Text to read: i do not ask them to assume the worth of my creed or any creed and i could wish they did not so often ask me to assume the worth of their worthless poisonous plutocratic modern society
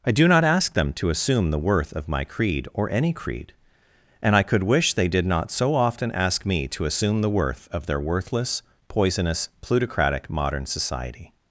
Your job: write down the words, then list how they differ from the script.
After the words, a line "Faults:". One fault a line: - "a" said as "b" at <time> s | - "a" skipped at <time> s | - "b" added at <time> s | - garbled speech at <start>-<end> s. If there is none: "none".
i do not ask them to assume the worth of my creed or any creed and i could wish they did not so often ask me to assume the worth of their worthless poisonous plutocratic modern society
Faults:
none